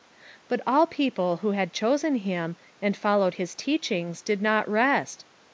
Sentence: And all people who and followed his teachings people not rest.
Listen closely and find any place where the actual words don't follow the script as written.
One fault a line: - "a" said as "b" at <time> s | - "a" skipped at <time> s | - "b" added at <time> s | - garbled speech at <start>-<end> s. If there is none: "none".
- "And" said as "But" at 0.5 s
- "had chosen him" added at 1.5 s
- "people" said as "did" at 4.2 s